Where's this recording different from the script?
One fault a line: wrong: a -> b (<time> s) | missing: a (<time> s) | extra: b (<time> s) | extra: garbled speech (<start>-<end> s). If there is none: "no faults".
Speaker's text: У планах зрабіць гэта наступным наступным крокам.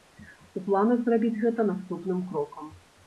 missing: наступным (2.2 s)